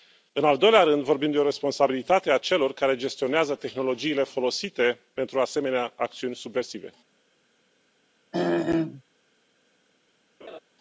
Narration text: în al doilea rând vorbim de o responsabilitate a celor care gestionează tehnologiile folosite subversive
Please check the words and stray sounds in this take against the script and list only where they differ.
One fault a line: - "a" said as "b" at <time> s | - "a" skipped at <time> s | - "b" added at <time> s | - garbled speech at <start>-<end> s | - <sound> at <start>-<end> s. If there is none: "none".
- "pentru asemenea acțiuni" added at 5.1 s
- throat clearing at 8.3-9.0 s
- laugh at 10.4-10.6 s